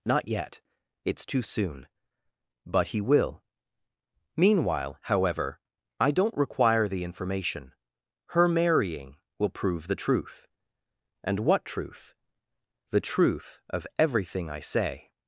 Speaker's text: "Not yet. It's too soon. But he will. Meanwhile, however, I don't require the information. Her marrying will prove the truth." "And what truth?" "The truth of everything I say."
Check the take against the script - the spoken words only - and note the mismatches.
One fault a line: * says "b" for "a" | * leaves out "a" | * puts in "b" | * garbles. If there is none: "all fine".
all fine